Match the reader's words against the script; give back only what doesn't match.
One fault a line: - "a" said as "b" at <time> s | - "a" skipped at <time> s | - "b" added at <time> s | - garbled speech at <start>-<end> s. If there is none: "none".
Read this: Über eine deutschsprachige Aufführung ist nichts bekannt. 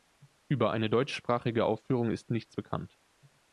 none